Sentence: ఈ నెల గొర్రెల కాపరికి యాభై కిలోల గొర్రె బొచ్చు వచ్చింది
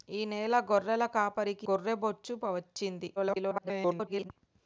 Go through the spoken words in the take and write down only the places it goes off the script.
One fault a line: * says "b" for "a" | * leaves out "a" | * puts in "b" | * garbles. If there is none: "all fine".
* leaves out "యాభై కిలోల"
* garbles